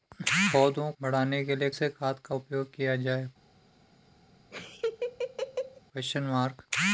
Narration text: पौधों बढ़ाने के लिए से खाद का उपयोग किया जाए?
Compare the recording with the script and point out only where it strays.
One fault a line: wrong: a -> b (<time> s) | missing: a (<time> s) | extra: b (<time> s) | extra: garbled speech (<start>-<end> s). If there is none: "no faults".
no faults